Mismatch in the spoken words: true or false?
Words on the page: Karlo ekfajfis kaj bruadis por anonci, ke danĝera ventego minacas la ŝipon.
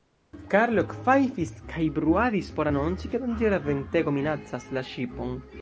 false